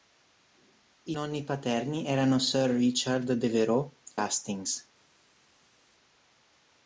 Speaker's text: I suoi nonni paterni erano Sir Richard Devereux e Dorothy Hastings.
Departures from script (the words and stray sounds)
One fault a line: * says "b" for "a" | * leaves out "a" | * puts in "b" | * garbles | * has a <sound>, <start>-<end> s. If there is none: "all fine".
* leaves out "suoi"
* leaves out "e Dorothy"